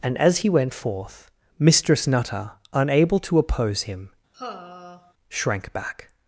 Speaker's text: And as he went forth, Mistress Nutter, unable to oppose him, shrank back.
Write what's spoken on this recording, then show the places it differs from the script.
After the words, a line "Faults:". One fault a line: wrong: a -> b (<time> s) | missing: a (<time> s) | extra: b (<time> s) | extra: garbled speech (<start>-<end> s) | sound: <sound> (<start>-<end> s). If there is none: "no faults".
And as he went forth, Mistress Nutter, unable to oppose him, shrank back.
Faults:
sound: sigh (4.3-5.1 s)